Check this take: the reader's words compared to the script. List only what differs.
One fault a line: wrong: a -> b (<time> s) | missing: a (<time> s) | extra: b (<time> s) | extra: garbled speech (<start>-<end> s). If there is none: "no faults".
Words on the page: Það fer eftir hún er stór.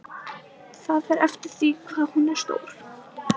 extra: því hvað (1.6 s)